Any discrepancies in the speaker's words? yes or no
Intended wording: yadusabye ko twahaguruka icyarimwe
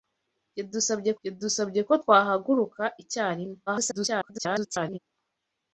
yes